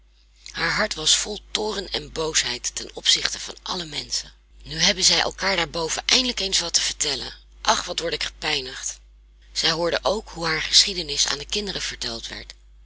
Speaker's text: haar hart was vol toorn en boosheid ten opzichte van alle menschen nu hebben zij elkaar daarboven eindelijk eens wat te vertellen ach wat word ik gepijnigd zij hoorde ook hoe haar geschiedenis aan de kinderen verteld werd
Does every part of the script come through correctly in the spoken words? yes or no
yes